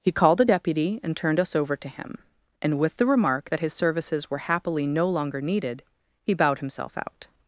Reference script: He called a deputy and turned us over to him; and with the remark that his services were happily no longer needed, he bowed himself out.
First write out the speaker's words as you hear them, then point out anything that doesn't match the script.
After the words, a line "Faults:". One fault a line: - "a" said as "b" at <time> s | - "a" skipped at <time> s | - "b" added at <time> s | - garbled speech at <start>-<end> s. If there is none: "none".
He called a deputy and turned us over to him; and with the remark that his services were happily no longer needed, he bowed himself out.
Faults:
none